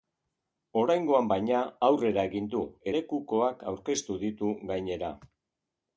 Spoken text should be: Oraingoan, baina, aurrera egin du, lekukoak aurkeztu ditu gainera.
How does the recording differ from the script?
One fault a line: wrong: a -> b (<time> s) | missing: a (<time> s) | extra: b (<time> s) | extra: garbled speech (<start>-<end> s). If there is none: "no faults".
no faults